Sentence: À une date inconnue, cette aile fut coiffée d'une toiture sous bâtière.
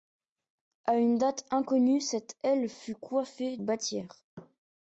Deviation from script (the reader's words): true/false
true